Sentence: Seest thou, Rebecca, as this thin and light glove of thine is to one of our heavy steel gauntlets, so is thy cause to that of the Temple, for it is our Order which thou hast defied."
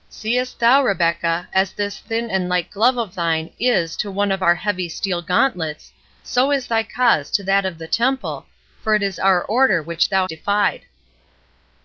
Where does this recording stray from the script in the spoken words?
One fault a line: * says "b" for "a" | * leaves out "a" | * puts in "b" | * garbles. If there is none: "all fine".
* leaves out "hast"